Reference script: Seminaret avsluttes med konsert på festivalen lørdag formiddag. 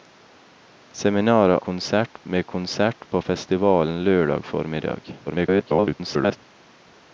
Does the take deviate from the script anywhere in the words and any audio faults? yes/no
yes